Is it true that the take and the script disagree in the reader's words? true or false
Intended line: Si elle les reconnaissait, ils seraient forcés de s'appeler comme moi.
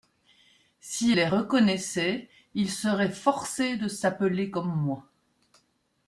true